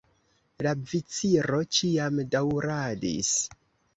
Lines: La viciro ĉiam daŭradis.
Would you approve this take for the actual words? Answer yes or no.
yes